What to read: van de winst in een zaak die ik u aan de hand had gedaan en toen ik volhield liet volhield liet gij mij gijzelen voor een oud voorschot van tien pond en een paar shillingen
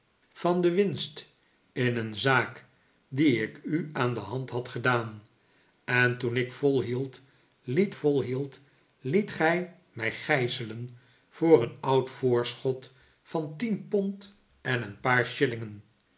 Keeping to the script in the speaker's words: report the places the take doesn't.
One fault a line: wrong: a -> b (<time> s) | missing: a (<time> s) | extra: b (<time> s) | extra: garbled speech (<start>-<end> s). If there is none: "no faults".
no faults